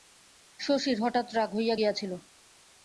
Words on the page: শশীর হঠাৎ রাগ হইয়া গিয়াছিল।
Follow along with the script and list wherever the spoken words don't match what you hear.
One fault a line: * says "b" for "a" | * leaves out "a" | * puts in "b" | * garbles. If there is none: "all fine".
all fine